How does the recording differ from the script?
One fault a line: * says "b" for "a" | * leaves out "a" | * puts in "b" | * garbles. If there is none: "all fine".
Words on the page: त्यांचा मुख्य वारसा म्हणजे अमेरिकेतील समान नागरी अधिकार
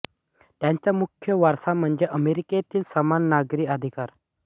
all fine